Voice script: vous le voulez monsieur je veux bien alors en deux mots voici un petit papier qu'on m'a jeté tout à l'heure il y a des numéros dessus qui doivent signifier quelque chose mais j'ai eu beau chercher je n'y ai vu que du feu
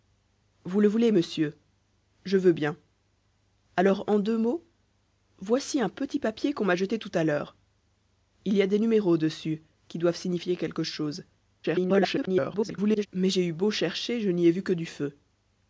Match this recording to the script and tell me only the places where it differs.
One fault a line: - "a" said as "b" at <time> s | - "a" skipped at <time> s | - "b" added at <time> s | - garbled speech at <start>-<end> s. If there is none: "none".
- garbled speech at 11.6-13.1 s